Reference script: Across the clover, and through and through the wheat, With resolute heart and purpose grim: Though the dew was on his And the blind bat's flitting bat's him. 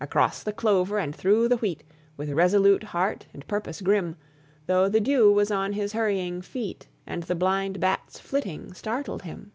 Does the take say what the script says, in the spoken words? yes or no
no